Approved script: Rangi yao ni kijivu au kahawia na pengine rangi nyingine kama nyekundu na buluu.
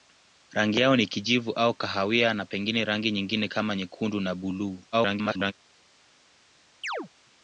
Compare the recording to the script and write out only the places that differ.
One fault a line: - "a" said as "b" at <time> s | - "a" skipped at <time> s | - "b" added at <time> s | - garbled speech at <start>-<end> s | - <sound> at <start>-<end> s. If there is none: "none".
- garbled speech at 4.9-5.5 s
- chirp at 6.8-7.1 s